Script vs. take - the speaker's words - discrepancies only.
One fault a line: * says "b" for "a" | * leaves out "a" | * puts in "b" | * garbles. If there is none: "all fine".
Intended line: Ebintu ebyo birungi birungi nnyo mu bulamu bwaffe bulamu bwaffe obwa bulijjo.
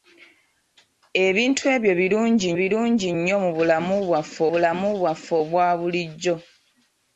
all fine